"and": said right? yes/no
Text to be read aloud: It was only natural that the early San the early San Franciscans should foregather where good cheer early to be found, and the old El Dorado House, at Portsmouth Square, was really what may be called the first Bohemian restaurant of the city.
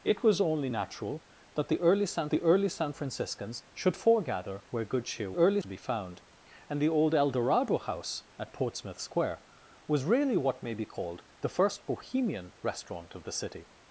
yes